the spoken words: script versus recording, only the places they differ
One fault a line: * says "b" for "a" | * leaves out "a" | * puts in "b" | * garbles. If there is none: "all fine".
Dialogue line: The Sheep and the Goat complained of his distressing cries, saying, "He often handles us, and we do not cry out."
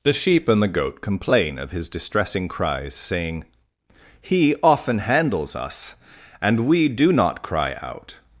* says "complain" for "complained"